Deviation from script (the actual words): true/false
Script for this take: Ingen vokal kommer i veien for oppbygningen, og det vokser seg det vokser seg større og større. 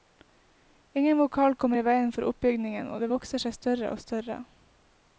true